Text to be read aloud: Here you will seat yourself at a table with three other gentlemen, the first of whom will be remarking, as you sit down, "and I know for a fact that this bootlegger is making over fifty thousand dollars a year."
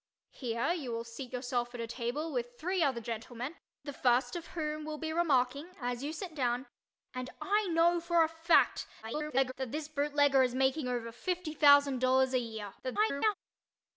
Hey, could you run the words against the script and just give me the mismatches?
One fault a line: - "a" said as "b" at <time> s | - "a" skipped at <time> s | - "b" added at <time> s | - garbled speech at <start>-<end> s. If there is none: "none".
- garbled speech at 9.0-9.5 s
- garbled speech at 12.8-13.3 s